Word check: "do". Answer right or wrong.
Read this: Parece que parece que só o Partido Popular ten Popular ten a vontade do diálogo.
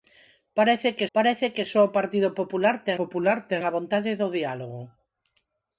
right